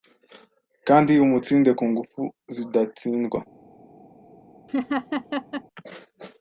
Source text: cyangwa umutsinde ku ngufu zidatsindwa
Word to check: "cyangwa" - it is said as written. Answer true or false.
false